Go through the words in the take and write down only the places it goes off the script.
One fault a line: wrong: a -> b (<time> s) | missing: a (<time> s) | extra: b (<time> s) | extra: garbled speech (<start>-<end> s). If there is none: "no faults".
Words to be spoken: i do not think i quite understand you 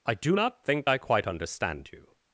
no faults